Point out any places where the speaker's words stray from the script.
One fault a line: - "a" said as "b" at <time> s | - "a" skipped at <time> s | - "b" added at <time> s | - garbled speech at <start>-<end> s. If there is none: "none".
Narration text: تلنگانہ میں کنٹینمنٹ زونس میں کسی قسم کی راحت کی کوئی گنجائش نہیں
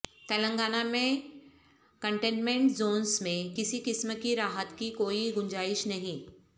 none